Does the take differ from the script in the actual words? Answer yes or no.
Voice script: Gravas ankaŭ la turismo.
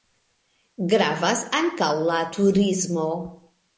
no